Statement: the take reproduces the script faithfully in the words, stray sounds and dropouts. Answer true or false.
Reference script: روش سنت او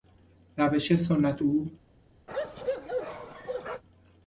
false